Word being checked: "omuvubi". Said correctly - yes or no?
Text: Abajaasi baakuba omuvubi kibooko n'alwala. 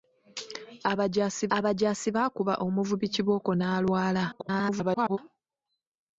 yes